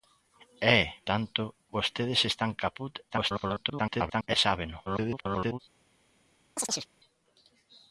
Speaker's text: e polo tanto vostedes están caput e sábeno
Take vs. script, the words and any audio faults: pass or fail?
fail